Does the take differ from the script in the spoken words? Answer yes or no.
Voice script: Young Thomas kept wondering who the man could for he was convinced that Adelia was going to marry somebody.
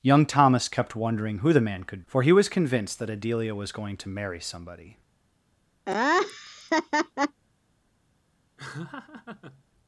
no